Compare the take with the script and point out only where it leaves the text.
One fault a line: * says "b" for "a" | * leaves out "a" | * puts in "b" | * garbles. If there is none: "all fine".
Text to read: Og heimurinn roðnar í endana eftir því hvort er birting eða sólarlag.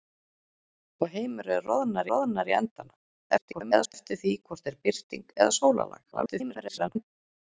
* puts in "roðnar"
* garbles
* garbles